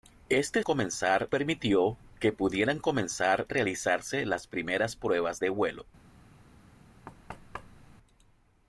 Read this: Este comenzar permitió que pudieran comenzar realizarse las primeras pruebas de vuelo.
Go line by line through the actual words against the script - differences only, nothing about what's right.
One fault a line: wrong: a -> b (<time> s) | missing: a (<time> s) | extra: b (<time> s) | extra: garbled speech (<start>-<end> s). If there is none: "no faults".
no faults